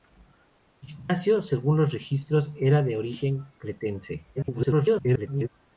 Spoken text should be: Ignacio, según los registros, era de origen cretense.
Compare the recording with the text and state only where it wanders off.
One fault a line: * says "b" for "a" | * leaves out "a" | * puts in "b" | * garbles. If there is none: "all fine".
* garbles